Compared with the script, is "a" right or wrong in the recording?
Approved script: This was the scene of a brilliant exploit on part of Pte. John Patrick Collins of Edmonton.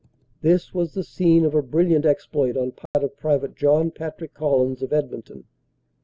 right